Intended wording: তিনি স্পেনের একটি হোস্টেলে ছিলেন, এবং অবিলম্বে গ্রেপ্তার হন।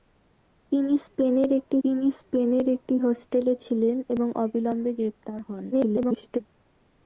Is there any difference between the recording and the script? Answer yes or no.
yes